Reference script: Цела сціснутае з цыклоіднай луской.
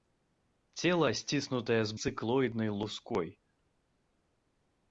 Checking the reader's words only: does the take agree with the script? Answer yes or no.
yes